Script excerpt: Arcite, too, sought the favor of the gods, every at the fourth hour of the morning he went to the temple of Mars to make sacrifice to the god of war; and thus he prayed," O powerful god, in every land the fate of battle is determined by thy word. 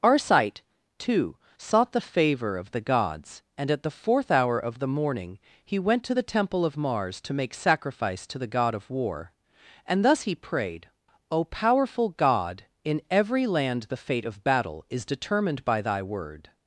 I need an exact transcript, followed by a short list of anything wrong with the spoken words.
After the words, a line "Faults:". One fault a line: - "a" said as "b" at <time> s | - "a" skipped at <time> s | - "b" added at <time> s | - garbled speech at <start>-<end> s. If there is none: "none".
Arcite, too, sought the favor of the gods, and at the fourth hour of the morning he went to the temple of Mars to make sacrifice to the god of war; and thus he prayed," O powerful god, in every land the fate of battle is determined by thy word.
Faults:
- "every" said as "and" at 3.6 s